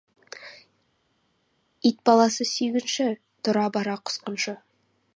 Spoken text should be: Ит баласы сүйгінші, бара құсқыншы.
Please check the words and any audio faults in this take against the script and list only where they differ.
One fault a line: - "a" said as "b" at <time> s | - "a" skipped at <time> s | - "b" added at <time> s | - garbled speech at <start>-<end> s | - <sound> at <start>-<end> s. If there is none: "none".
- "тұра" added at 3.5 s